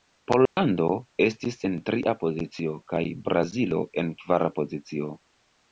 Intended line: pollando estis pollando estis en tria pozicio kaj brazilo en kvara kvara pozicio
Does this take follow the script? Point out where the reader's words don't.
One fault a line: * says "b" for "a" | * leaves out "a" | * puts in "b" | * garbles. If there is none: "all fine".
* leaves out "pollando estis"
* leaves out "kvara"